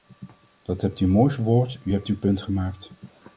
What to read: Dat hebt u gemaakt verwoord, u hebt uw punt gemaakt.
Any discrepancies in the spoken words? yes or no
yes